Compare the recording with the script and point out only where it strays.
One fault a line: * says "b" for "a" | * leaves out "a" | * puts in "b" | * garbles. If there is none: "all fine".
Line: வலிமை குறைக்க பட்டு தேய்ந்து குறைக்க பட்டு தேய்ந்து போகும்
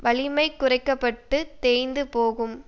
* leaves out "குறைக்க பட்டு தேய்ந்து"